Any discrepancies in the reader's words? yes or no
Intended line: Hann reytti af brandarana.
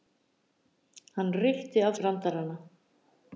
no